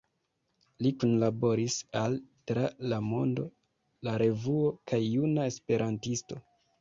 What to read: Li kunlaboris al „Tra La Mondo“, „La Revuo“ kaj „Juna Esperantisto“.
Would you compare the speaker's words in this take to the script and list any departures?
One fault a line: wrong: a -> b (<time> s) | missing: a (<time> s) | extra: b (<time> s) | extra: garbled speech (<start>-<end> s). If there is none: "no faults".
no faults